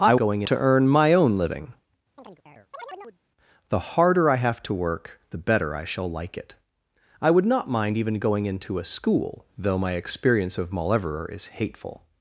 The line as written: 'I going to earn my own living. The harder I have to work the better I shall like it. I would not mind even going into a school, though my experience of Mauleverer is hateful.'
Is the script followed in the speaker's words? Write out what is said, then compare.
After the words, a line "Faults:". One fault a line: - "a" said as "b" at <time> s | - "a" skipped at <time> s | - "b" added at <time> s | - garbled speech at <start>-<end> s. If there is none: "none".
'I going to earn my own living. The harder I have to work the better I shall like it. I would not mind even going into a school, though my experience of Mauleverer is hateful.'
Faults:
none